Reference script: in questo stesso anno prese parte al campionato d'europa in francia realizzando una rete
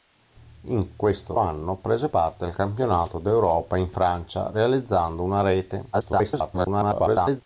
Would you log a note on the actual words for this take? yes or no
yes